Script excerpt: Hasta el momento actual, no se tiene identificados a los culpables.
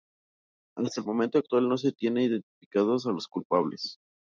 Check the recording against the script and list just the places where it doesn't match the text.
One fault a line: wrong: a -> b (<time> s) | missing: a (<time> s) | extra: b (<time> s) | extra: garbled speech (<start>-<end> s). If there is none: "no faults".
no faults